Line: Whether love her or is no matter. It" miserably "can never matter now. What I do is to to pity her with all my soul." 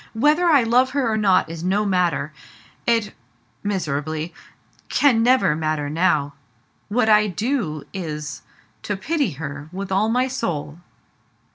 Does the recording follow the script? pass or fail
fail